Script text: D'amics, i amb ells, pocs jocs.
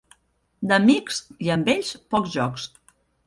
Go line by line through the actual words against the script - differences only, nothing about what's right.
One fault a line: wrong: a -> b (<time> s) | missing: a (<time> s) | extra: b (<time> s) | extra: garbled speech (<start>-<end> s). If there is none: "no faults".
no faults